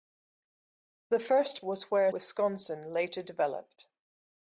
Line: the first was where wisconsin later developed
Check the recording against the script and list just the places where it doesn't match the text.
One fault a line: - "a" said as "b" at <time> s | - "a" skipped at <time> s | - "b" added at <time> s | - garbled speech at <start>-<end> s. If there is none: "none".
none